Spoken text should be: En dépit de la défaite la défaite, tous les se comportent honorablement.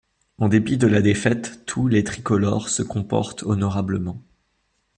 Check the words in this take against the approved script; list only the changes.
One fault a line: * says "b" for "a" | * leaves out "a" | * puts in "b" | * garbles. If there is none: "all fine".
* leaves out "la défaite"
* puts in "tricolores"